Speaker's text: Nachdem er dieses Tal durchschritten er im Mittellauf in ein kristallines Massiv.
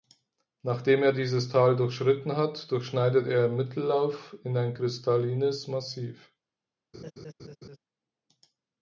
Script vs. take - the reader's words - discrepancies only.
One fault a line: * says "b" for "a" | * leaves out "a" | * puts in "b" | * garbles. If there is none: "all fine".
* puts in "hat durchschneidet"